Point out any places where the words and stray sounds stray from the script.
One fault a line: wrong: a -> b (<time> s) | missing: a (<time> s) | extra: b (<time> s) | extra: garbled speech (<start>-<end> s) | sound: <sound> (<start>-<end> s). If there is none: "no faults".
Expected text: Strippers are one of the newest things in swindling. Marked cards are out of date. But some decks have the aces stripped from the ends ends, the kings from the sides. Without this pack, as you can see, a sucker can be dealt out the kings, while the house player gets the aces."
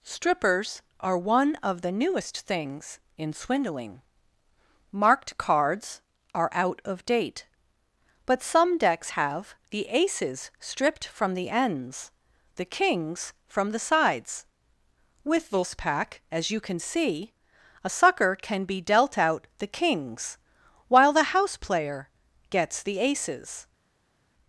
missing: ends (12.1 s)
wrong: Without -> With (15.2 s)